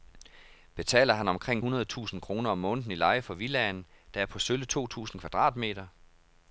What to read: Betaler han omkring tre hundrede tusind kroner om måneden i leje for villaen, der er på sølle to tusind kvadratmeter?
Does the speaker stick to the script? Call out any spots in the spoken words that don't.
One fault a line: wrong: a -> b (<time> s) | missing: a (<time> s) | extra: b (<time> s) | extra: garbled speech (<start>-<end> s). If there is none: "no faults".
missing: tre (1.6 s)